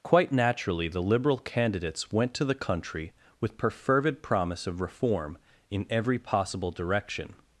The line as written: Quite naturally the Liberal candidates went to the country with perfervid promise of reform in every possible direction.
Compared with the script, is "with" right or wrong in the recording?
right